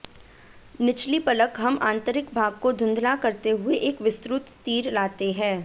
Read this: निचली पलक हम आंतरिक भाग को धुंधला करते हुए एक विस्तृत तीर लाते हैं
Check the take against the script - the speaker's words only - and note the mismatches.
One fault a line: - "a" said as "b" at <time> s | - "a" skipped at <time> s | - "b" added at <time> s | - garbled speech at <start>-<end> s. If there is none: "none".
none